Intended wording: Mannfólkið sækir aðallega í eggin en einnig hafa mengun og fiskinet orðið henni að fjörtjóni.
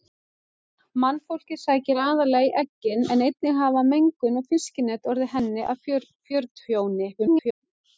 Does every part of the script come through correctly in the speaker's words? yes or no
no